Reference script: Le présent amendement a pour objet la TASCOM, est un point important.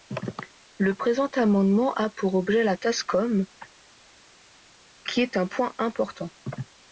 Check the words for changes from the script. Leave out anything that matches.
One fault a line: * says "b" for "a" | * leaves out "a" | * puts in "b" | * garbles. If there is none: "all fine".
* puts in "qui"